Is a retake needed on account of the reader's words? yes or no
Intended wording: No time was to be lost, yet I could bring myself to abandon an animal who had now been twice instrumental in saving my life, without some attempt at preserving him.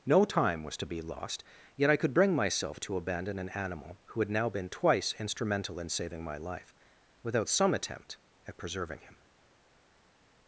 no